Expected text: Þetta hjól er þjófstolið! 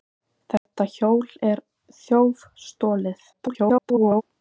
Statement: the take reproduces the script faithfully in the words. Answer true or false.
false